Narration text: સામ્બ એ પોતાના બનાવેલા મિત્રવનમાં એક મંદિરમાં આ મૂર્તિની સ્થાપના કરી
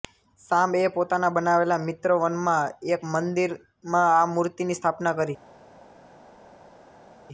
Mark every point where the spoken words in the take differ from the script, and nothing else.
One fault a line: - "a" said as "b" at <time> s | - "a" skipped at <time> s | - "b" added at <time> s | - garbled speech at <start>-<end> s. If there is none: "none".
none